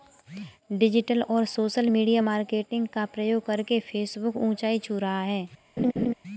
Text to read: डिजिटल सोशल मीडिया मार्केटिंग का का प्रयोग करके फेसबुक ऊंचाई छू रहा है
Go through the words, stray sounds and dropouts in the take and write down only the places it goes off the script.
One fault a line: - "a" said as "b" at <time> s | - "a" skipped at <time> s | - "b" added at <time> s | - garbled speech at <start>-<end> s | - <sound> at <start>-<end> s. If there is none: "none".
- "और" added at 1.2 s
- "का" skipped at 3.1 s
- laugh at 5.8-6.1 s